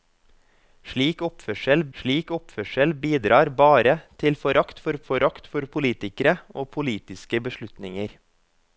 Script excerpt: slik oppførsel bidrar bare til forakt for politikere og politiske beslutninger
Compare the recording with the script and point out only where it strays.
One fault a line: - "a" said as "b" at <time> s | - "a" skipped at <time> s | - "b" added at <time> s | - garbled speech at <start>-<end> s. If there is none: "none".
- "slik oppførsel" added at 2.0 s
- "forakt for" added at 5.1 s